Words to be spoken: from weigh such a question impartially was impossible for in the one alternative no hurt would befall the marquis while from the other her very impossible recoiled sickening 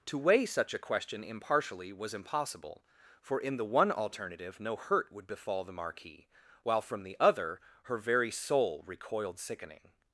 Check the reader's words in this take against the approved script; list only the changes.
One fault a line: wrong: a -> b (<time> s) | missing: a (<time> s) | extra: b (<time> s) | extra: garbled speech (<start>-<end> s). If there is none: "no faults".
wrong: from -> to (0.1 s)
wrong: impossible -> soul (8.3 s)